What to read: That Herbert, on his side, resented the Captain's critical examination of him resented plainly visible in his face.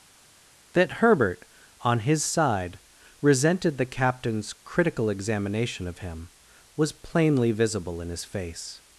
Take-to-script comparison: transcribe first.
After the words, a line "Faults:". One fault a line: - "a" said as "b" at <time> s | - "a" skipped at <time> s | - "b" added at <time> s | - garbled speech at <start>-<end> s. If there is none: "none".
That Herbert, on his side, resented the Captain's critical examination of him was plainly visible in his face.
Faults:
- "resented" said as "was" at 6.8 s